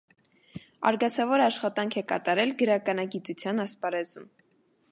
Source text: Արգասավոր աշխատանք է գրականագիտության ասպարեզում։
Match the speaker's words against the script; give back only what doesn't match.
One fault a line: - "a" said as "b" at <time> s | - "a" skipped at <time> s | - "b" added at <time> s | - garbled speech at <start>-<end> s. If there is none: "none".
- "կատարել" added at 2.1 s